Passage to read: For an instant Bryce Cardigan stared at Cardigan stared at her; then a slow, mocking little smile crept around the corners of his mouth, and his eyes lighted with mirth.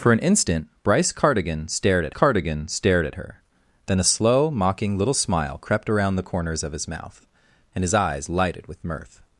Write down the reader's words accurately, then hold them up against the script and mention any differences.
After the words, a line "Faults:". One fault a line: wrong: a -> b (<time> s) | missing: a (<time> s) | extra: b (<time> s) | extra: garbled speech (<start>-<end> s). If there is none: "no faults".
For an instant Bryce Cardigan stared at Cardigan stared at her; then a slow, mocking little smile crept around the corners of his mouth, and his eyes lighted with mirth.
Faults:
no faults